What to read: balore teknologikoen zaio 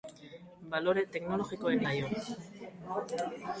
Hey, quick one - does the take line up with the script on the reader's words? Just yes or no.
yes